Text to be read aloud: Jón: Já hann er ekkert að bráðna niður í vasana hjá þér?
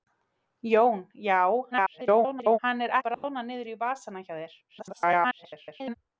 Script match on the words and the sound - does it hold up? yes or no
no